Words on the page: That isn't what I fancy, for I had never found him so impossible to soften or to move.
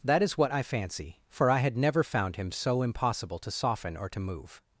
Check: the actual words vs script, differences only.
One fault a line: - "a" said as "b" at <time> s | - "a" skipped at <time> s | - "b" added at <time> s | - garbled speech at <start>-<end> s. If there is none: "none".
- "isn't" said as "is" at 0.2 s